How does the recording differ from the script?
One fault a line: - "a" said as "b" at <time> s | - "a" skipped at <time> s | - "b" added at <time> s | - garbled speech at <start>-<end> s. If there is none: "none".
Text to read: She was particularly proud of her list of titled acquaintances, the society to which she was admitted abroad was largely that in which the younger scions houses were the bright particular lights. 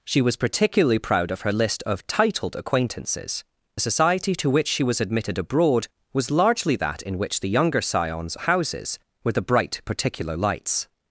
none